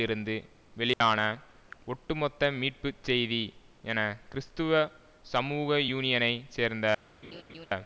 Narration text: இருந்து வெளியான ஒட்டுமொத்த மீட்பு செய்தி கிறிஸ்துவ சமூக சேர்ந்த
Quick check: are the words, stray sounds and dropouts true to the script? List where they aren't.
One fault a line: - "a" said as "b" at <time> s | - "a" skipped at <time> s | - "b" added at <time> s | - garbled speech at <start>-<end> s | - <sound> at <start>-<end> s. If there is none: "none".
- dropout at 0.9-1.0 s
- "என" added at 3.8 s
- "யூனியனை" added at 5.9 s
- laugh at 7.2-7.7 s